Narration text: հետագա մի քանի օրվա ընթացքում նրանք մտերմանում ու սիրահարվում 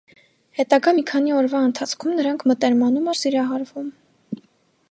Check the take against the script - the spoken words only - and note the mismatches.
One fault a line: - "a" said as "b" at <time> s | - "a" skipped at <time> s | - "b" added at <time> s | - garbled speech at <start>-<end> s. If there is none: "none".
none